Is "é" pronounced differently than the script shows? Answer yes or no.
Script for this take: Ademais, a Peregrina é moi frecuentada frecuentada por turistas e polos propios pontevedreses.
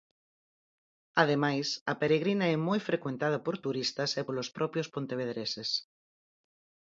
no